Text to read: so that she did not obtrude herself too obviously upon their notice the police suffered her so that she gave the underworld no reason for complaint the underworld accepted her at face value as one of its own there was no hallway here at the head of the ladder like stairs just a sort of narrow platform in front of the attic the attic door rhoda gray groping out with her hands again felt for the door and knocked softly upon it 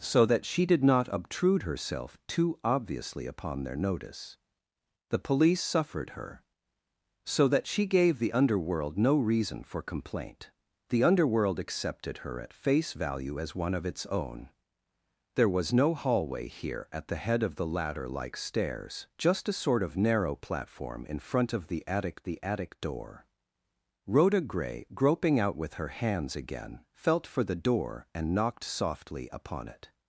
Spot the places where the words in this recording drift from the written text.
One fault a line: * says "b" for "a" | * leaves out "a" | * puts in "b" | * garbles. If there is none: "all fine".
all fine